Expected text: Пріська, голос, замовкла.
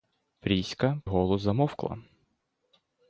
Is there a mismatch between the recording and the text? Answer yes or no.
no